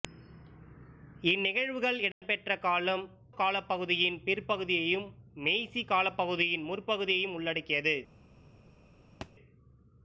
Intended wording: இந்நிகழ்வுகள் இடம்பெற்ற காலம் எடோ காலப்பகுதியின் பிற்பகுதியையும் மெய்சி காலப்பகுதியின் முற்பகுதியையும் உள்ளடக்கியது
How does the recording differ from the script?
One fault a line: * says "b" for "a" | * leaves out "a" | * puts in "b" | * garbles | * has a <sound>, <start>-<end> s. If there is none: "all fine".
* has a dropout, 2.1-2.2 s
* leaves out "எடோ"
* has a thud, 9.2-9.3 s